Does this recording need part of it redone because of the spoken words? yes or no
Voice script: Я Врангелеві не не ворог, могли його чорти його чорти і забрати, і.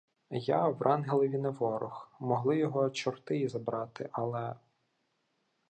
yes